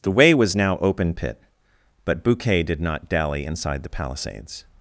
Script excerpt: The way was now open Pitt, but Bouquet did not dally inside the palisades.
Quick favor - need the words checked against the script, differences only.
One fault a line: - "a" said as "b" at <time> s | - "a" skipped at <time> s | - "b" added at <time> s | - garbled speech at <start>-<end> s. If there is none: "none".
none